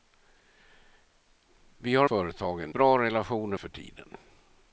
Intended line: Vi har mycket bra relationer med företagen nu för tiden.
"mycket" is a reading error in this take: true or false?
true